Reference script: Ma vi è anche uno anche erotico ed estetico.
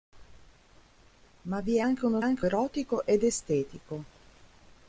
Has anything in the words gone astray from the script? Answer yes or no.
no